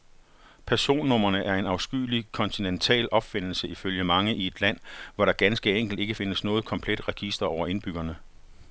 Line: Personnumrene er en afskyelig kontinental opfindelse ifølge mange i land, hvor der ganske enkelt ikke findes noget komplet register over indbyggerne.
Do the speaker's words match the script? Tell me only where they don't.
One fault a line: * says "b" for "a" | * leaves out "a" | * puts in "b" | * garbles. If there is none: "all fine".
* puts in "et"